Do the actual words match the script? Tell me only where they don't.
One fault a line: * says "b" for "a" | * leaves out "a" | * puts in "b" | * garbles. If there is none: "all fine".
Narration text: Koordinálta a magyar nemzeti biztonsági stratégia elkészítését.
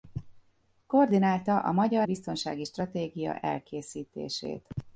* leaves out "nemzeti"